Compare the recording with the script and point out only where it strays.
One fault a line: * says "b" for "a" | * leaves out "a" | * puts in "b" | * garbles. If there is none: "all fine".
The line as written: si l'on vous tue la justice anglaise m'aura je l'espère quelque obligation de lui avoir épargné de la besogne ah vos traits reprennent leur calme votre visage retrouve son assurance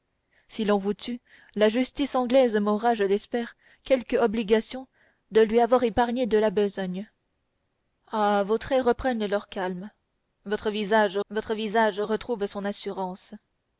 * puts in "votre visage"